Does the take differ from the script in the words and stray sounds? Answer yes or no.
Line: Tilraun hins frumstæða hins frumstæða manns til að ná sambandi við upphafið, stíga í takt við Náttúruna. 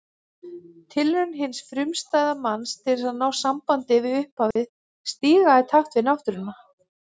yes